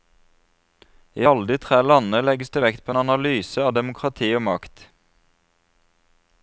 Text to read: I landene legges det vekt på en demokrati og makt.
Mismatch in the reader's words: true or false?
true